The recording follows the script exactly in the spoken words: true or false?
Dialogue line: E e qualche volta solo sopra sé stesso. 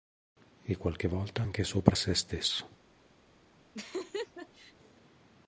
false